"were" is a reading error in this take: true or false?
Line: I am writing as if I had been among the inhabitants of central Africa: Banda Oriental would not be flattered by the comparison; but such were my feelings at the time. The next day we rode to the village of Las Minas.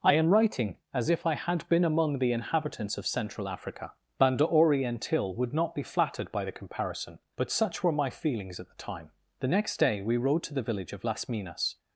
false